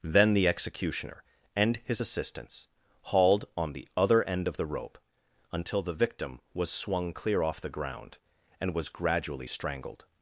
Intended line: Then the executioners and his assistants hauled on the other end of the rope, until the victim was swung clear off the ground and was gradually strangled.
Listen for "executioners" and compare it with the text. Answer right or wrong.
wrong